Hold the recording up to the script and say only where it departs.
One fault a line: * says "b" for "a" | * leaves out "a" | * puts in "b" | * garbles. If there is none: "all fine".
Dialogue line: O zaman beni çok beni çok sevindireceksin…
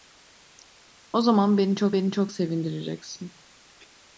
all fine